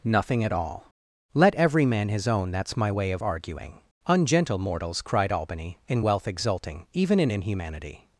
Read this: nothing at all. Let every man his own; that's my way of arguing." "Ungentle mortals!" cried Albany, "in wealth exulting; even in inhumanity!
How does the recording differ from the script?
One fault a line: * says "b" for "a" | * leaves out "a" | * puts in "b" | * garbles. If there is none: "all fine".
all fine